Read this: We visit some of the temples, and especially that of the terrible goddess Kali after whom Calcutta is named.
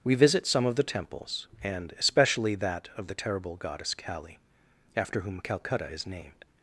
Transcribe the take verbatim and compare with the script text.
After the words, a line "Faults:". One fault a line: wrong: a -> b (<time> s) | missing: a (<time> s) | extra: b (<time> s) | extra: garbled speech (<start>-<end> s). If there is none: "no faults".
We visit some of the temples, and especially that of the terrible goddess Kali after whom Calcutta is named.
Faults:
no faults